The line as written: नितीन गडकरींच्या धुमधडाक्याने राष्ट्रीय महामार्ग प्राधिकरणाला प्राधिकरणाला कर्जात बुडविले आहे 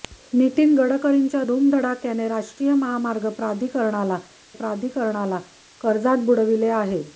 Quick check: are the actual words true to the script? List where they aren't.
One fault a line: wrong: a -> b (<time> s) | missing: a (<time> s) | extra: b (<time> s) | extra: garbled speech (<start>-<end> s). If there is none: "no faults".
no faults